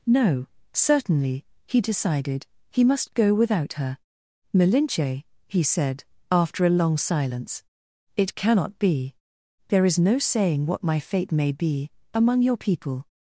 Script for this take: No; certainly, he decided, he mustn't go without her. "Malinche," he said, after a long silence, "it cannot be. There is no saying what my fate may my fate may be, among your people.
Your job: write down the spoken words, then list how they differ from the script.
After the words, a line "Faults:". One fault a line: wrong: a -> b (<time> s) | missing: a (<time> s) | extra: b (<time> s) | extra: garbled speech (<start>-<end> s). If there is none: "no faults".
No; certainly, he decided, he must go without her. "Malinche," he said, after a long silence, "it cannot be. There is no saying what my fate may be, among your people.
Faults:
wrong: mustn't -> must (2.8 s)
missing: my fate may (11.5 s)